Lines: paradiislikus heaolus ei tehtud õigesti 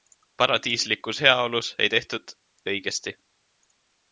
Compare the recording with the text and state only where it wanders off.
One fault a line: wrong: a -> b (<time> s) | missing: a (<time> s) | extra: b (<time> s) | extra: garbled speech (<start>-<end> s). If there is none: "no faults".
no faults